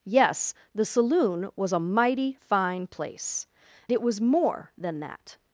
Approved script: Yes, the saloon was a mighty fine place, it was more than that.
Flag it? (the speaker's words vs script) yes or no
no